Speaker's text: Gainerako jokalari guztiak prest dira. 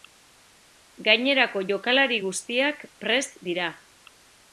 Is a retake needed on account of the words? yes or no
no